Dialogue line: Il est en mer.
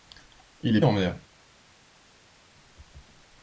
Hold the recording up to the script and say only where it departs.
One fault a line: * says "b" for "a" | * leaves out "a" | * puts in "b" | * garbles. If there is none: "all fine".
all fine